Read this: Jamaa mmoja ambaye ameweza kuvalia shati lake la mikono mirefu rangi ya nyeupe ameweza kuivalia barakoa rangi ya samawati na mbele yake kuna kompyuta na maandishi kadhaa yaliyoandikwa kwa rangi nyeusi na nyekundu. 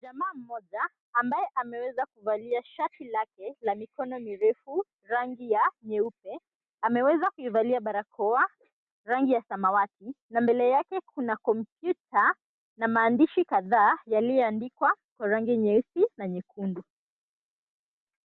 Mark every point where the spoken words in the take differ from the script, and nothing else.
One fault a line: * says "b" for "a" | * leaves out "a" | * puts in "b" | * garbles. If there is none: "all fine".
all fine